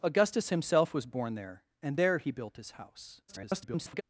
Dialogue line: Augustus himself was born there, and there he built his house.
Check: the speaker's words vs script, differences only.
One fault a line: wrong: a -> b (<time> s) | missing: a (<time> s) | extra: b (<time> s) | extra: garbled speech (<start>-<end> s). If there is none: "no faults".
extra: garbled speech (3.3-4.0 s)